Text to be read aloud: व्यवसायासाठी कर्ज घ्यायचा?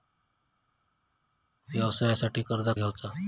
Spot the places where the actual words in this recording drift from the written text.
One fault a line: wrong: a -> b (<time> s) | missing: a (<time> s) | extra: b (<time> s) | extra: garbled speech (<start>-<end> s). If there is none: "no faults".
no faults